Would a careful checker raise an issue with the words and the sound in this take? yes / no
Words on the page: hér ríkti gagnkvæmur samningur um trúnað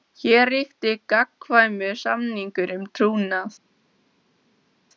no